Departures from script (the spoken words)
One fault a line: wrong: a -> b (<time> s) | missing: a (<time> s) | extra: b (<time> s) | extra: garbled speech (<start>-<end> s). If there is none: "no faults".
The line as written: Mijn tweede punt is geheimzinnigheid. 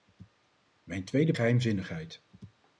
missing: punt is (1.3 s)